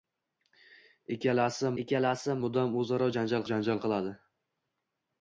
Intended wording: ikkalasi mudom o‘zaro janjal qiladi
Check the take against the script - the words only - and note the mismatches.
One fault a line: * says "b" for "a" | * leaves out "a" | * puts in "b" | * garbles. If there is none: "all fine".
* puts in "ikkalasi"
* puts in "janjal"